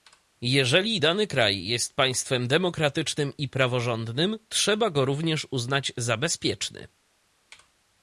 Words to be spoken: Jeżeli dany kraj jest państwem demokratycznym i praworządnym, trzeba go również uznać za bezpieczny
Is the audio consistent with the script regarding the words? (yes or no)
yes